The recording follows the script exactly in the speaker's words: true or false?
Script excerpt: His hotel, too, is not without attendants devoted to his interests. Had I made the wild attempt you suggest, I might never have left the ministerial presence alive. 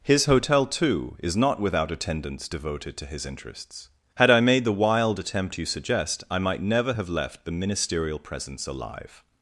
true